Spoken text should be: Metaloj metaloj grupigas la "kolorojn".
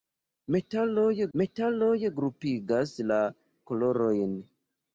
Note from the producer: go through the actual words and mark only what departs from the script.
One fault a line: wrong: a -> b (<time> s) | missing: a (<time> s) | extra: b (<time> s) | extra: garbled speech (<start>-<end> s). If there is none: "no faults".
no faults